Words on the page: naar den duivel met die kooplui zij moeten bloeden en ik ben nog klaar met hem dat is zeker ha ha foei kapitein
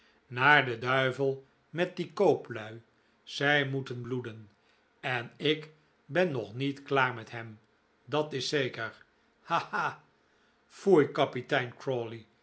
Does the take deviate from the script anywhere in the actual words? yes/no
yes